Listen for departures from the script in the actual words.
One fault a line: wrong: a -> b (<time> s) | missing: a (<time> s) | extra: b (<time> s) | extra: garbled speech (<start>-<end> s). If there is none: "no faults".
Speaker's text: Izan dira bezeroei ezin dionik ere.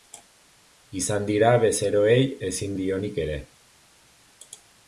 no faults